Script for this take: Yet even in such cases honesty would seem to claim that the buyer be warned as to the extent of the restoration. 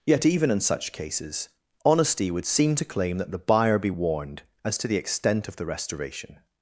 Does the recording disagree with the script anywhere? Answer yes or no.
no